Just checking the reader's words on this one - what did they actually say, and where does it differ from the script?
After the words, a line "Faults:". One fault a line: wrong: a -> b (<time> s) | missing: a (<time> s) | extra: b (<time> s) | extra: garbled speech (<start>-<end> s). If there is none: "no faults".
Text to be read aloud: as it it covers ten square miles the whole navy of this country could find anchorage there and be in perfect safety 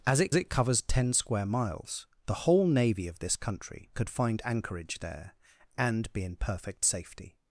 as it it covers ten square miles the whole navy of this country could find anchorage there and be in perfect safety
Faults:
no faults